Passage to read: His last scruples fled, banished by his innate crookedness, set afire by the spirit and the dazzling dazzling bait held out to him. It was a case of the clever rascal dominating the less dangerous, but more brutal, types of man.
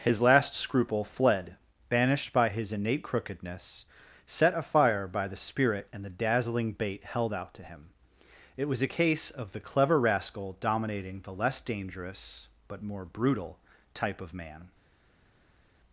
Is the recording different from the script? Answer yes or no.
yes